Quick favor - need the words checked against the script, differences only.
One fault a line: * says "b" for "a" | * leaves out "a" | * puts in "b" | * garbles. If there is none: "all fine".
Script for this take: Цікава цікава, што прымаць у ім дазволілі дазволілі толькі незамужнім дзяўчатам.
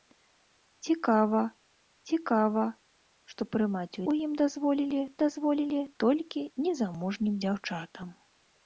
all fine